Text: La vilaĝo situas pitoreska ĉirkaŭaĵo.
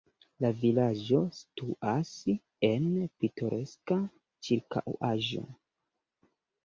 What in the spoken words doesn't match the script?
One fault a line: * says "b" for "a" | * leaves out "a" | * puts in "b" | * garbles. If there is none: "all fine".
* puts in "en"